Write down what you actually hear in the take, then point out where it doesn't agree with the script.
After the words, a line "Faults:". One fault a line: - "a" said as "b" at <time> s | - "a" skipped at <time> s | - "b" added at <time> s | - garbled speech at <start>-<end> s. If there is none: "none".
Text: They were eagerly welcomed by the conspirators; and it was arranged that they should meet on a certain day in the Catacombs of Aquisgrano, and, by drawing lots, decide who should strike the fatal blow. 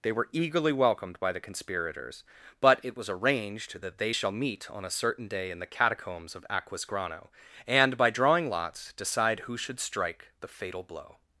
They were eagerly welcomed by the conspirators; but it was arranged that they shall meet on a certain day in the Catacombs of Aquisgrano, and, by drawing lots, decide who should strike the fatal blow.
Faults:
- "and" said as "but" at 2.6 s
- "should" said as "shall" at 4.1 s